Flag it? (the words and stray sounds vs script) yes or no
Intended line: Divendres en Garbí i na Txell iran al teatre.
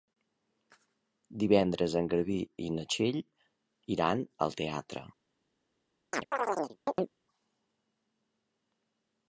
yes